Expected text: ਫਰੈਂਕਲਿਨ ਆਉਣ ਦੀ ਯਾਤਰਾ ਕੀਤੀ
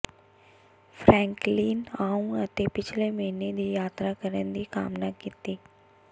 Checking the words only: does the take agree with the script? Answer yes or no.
no